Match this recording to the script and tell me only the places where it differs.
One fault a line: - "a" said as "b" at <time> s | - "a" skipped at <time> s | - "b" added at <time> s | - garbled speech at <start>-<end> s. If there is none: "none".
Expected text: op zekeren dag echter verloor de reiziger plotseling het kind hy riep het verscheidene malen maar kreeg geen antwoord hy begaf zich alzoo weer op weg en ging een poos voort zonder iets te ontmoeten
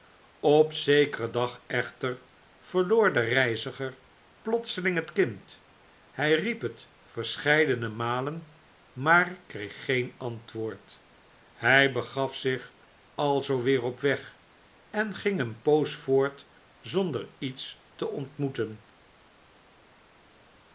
none